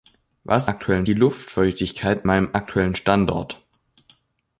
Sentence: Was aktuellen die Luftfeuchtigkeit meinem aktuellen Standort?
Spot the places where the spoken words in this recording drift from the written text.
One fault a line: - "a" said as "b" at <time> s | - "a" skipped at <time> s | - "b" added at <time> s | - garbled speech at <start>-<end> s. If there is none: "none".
none